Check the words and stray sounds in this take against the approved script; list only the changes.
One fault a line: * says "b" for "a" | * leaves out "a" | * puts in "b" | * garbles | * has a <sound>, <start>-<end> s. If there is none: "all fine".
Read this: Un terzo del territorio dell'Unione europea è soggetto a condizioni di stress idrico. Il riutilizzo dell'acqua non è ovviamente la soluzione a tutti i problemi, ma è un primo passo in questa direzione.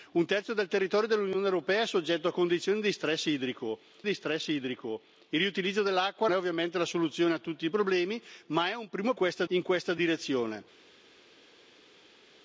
* puts in "di stress idrico"
* leaves out "non"
* says "questa" for "passo"